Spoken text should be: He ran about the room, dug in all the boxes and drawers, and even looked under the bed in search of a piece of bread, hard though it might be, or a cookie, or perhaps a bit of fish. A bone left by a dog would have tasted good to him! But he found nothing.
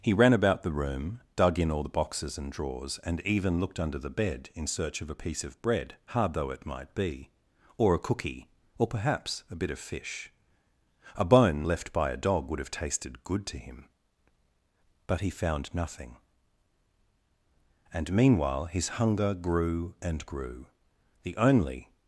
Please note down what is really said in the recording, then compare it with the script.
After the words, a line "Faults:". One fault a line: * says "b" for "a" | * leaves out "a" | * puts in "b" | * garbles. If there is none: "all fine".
He ran about the room, dug in all the boxes and drawers, and even looked under the bed in search of a piece of bread, hard though it might be, or a cookie, or perhaps a bit of fish. A bone left by a dog would have tasted good to him! But he found nothing. And meanwhile his hunger grew and grew. The only
Faults:
* puts in "And meanwhile his hunger grew and grew The only"